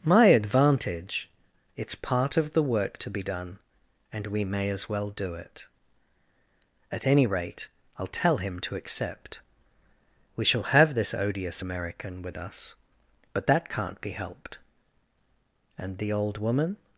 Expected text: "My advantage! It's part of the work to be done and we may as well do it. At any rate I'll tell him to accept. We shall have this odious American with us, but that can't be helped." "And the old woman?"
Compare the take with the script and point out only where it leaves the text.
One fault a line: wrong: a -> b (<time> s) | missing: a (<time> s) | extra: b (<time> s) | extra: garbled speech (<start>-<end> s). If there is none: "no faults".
no faults